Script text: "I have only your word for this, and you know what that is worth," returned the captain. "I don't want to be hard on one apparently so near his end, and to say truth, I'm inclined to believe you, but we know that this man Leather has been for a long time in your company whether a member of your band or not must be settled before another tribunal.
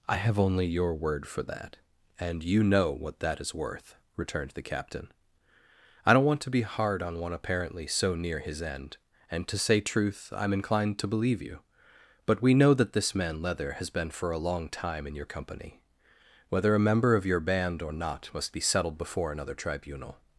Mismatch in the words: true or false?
true